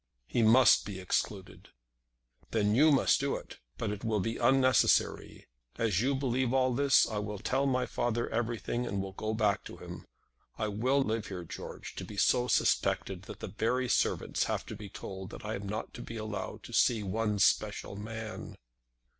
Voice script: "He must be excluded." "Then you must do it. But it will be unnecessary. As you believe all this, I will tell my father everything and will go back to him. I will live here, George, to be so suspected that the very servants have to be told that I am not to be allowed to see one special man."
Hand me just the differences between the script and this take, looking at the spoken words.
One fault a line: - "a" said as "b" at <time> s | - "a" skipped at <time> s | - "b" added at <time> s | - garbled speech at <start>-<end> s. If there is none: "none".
none